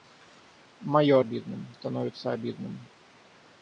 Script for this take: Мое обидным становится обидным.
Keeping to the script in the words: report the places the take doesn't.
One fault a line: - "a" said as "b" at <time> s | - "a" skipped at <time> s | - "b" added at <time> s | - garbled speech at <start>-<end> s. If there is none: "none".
none